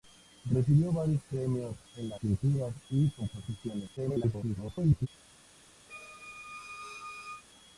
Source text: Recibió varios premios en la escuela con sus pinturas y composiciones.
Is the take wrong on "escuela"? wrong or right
wrong